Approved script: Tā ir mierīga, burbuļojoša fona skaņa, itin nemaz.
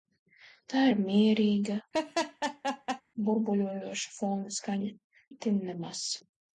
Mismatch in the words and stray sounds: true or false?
true